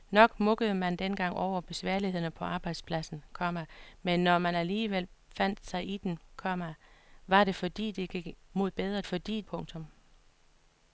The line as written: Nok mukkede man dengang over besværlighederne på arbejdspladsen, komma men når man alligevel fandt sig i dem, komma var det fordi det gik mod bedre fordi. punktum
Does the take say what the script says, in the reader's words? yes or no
yes